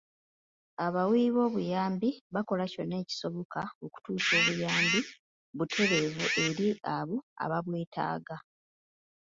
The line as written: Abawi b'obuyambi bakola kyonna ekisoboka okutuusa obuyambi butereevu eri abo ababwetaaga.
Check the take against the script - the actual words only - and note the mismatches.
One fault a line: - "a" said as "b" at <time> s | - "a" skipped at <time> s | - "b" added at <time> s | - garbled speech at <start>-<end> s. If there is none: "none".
none